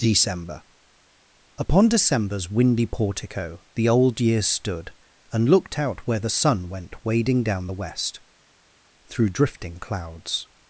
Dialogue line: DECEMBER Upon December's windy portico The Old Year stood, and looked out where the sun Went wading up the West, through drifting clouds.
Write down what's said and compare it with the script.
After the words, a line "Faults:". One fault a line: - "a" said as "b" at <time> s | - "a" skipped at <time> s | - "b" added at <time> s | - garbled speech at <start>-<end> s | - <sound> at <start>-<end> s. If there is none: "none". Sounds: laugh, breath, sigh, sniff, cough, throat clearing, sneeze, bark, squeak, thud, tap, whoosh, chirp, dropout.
DECEMBER Upon December's windy portico The Old Year stood, and looked out where the sun Went wading down the West, through drifting clouds.
Faults:
- "up" said as "down" at 7.4 s